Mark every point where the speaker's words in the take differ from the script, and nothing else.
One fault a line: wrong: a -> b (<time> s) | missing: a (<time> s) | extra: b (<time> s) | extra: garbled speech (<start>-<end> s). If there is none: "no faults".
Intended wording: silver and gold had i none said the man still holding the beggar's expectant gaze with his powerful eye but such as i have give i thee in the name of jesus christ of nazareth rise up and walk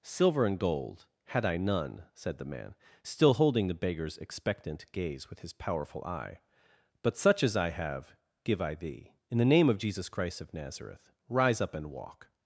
no faults